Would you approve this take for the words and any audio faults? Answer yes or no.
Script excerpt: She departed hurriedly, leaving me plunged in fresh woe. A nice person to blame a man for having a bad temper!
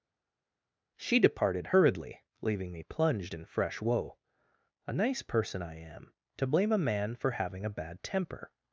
no